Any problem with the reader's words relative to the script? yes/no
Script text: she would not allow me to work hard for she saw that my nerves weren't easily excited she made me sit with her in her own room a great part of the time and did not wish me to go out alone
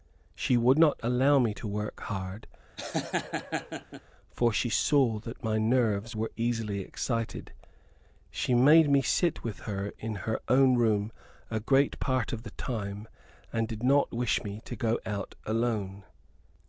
yes